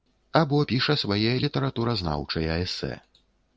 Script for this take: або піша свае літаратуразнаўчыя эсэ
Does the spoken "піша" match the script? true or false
true